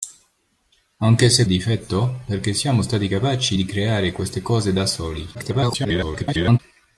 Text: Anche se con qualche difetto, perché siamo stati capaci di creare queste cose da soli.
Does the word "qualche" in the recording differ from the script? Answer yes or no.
yes